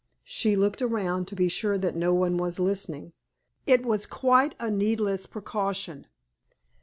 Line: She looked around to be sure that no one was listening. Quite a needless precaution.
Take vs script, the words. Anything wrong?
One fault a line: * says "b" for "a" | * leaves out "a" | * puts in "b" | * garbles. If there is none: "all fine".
* puts in "It was"